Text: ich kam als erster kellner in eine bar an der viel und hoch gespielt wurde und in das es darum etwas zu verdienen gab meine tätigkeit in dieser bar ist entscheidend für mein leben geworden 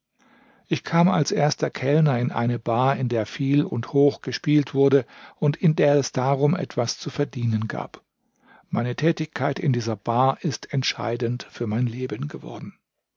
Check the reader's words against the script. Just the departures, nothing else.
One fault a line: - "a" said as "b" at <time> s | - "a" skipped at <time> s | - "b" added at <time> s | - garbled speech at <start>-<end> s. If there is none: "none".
- "an" said as "in" at 3.0 s
- "das" said as "der" at 5.8 s